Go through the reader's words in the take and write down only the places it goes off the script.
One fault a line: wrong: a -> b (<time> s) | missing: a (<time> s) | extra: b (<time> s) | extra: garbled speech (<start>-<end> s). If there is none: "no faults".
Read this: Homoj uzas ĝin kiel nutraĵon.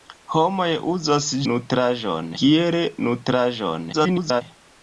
wrong: ĝin -> nutraĵon (1.5 s)
extra: garbled speech (3.9-4.4 s)